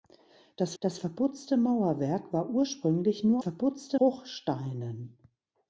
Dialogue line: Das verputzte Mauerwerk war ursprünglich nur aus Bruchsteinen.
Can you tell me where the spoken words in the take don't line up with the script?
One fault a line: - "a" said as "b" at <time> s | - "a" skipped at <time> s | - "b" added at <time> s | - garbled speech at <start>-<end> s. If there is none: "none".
- "das" added at 0.8 s
- "aus" said as "verputzte" at 3.4 s